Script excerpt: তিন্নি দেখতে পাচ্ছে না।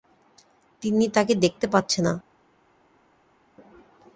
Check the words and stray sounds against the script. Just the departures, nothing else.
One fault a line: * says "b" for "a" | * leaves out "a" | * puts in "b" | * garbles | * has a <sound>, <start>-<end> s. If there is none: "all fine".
* puts in "তাকে"